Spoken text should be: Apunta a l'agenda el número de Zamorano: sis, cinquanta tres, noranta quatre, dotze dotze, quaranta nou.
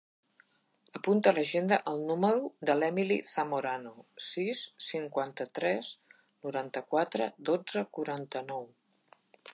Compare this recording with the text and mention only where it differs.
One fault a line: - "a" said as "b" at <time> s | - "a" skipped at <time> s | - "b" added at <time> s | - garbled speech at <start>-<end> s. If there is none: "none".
- "l'Emily" added at 2.8 s
- "dotze" skipped at 7.8 s